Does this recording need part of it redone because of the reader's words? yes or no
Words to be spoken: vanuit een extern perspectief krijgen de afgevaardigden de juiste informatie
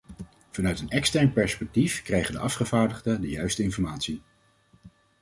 no